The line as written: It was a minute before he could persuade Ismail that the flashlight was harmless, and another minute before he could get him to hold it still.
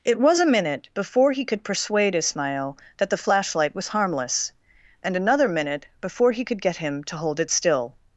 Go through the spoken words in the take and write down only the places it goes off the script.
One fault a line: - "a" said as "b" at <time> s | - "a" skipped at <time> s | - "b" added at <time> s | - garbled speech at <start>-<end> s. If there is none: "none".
none